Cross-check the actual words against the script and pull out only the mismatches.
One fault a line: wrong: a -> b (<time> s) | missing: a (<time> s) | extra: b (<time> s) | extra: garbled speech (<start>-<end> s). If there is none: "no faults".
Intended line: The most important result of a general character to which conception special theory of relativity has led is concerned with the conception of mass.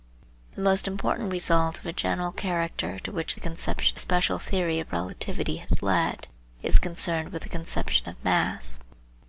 no faults